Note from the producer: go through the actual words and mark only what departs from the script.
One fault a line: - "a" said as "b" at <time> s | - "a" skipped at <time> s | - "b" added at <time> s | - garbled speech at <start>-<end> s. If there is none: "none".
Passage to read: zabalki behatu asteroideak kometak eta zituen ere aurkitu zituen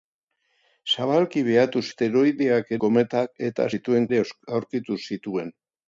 none